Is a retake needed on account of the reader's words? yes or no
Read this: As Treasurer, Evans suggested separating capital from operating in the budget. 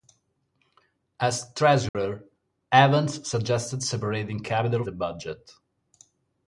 yes